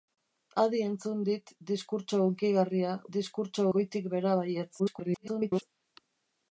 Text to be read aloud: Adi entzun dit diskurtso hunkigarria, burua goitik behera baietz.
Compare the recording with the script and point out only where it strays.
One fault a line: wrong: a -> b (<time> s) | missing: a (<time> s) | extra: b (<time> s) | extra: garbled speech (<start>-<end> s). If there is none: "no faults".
wrong: burua -> diskurtso (3.2 s)
extra: garbled speech (4.8-5.6 s)